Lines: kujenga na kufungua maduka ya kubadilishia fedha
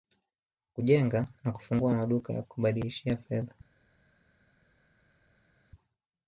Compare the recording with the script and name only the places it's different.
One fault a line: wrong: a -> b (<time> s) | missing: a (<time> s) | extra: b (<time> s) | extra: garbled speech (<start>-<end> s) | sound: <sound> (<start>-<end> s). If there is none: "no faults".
no faults